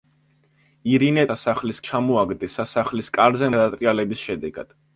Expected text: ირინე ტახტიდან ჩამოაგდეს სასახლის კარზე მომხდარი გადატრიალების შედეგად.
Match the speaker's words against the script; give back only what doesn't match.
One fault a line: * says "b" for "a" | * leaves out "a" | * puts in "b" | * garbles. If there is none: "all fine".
* says "სასახლის" for "ტახტიდან"
* leaves out "მომხდარი"